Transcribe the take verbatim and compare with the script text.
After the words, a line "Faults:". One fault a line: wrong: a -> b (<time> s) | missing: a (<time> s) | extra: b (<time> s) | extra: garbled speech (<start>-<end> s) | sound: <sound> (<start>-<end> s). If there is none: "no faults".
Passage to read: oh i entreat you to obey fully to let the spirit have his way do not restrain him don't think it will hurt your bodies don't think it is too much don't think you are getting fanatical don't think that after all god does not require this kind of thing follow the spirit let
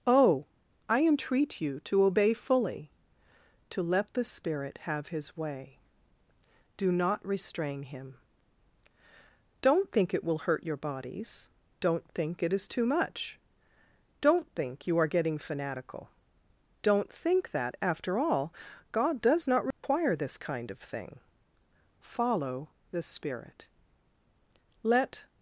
oh i entreat you to obey fully to let the spirit have his way do not restrain him don't think it will hurt your bodies don't think it is too much don't think you are getting fanatical don't think that after all god does not require this kind of thing follow the spirit let
Faults:
sound: dropout (19.7-19.8 s)